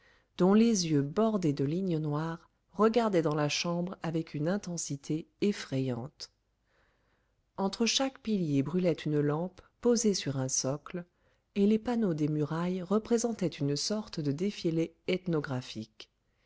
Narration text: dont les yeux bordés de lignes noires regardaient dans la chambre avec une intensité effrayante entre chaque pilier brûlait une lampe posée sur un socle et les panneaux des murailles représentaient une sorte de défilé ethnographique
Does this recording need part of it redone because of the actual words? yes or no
no